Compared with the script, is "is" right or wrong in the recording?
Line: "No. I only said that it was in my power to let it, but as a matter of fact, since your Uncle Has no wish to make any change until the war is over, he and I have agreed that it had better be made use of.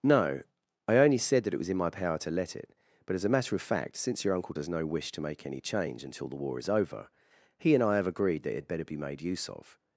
right